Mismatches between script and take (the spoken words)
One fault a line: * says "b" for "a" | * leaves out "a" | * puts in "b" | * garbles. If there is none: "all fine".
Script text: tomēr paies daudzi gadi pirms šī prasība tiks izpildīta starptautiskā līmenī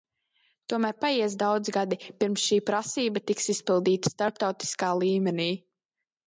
all fine